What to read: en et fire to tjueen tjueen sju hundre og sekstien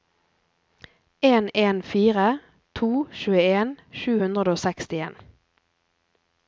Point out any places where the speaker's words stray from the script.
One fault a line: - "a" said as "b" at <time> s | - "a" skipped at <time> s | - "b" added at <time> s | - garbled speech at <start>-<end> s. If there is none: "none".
- "et" said as "en" at 1.6 s
- "tjueen" skipped at 3.7 s